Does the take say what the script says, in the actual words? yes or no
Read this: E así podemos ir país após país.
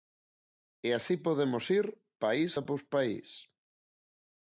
yes